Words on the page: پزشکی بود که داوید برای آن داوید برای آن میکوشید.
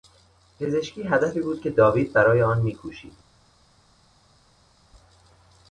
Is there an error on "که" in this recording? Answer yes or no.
no